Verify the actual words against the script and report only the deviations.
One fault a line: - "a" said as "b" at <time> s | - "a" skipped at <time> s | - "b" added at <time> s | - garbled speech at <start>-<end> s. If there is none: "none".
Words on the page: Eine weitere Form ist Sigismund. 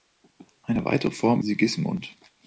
- "ist" skipped at 1.4 s